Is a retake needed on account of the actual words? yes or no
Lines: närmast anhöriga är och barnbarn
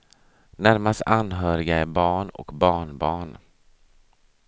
yes